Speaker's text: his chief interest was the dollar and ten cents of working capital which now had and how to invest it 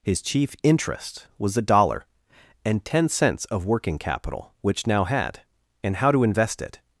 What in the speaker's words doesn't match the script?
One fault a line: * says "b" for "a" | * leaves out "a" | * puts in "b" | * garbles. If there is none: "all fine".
all fine